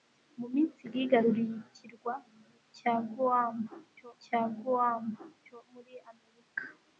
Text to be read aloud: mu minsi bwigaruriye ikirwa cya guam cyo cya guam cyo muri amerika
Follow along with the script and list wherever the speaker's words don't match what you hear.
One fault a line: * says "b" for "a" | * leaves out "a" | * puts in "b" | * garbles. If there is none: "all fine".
all fine